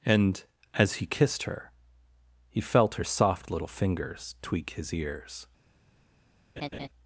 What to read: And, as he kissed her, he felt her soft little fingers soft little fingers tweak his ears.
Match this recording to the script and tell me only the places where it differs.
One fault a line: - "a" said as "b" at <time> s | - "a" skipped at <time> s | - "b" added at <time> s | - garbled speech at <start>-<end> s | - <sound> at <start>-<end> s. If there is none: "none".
- "soft little fingers" skipped at 4.3 s
- laugh at 6.6-6.9 s